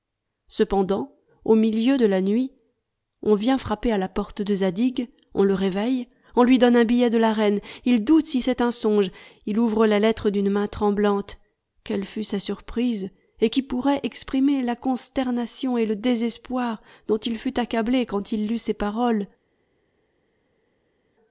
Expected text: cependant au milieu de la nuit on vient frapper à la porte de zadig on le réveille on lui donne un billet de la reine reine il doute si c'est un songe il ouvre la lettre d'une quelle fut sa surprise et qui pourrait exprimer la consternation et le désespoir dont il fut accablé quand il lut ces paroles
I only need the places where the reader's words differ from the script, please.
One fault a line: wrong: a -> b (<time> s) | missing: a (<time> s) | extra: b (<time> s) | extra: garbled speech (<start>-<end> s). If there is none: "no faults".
missing: reine (7.6 s)
extra: main tremblante (10.5 s)